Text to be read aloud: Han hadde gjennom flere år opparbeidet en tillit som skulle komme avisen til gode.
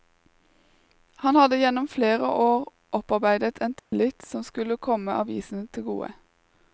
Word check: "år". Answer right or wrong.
right